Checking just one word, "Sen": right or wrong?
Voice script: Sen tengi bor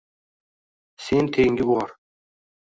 right